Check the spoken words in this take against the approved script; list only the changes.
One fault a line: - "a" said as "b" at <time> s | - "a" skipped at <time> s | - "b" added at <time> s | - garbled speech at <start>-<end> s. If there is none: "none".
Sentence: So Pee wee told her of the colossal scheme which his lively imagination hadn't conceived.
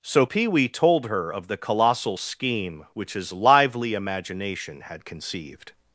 - "hadn't" said as "had" at 4.8 s